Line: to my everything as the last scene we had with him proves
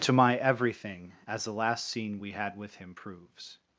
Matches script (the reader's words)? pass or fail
pass